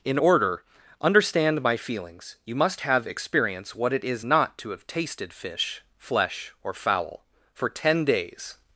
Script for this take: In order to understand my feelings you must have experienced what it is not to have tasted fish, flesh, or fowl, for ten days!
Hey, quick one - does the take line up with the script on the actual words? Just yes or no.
no